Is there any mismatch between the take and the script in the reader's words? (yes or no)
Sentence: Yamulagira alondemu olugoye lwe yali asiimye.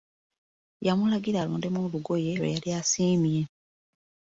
no